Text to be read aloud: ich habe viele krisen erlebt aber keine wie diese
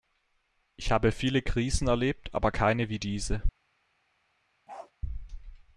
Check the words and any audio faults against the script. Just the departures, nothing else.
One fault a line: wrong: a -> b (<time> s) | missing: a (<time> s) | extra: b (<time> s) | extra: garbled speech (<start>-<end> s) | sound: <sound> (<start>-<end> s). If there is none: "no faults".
sound: bark (4.7-4.9 s)